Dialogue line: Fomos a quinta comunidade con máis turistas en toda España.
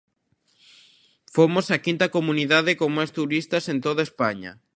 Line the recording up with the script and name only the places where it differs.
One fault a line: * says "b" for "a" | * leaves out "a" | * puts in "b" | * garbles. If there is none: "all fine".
all fine